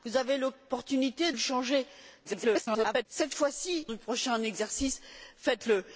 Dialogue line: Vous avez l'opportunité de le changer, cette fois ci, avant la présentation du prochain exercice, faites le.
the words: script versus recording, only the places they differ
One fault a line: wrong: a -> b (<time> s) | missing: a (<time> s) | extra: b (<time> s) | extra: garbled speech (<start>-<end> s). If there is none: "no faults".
missing: de (1.3 s)
extra: garbled speech (2.2-3.1 s)
missing: avant la présentation (3.9 s)